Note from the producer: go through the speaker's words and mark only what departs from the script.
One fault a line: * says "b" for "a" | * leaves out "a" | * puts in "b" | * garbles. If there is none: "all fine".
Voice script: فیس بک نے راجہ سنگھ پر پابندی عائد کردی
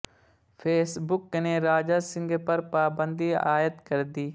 all fine